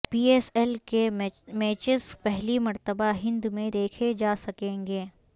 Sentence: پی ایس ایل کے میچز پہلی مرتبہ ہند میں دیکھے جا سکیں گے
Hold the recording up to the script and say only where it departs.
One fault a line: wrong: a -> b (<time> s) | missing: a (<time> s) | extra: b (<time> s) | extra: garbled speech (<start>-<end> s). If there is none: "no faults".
no faults